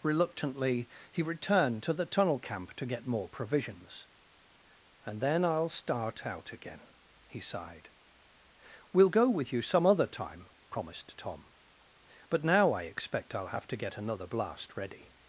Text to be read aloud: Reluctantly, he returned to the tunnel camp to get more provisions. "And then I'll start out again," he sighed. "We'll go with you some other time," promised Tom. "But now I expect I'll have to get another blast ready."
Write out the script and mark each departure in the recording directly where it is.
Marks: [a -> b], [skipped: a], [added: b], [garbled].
Reluctantly, he returned to the tunnel camp to get more provisions. "And then I'll start out again," he sighed. "We'll go with you some other time," promised Tom. "But now I expect I'll have to get another blast ready."